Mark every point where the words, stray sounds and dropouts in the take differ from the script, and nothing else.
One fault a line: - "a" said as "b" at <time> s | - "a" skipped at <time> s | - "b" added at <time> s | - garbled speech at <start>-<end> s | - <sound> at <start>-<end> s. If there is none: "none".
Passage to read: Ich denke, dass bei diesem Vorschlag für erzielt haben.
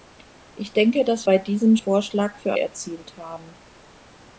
none